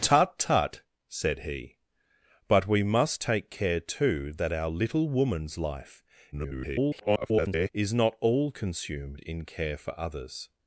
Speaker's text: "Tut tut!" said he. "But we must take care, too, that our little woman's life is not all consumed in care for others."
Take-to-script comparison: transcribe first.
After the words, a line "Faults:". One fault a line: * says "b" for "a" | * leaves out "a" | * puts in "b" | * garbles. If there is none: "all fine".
"Tut tut!" said he. "But we must take care, too, that our little woman's life [garbled] is not all consumed in care for others."
Faults:
* garbles